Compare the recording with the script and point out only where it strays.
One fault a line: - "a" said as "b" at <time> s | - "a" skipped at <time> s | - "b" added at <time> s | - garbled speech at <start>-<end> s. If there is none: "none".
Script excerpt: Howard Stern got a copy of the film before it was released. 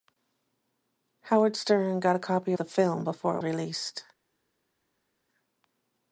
- "of" skipped at 2.5 s
- "was" skipped at 3.4 s